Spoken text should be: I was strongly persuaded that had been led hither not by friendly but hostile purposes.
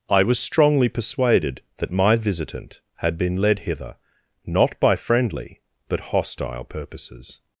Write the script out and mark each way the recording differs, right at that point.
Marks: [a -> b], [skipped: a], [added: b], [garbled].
I was strongly persuaded that [added: my visitant] had been led hither not by friendly but hostile purposes.